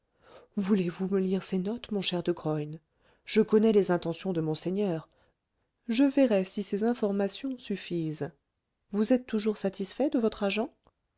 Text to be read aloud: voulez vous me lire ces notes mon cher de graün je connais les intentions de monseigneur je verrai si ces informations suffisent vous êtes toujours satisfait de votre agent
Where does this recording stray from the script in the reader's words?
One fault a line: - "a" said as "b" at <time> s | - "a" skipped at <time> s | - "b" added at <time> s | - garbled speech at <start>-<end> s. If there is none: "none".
none